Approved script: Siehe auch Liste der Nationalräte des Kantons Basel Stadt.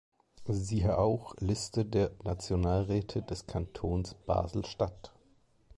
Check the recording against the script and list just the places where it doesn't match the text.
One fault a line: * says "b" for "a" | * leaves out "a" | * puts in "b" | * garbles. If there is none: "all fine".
all fine